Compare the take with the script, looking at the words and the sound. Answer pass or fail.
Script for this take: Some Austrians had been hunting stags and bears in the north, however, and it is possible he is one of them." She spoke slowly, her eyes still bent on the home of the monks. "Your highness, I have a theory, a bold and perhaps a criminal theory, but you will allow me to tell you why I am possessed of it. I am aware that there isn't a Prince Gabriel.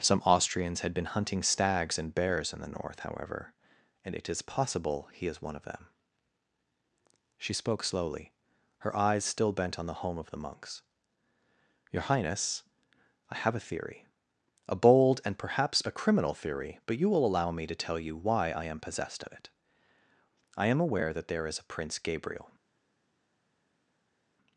fail